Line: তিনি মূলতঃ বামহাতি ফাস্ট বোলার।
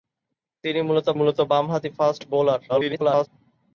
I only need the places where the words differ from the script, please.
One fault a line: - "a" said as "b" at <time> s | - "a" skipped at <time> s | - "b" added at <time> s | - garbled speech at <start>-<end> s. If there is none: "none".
- "মূলতঃ" added at 1.2 s
- garbled speech at 2.7-3.3 s